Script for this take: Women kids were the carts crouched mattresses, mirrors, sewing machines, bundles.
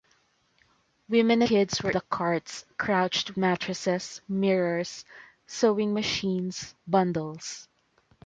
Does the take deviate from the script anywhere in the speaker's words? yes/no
no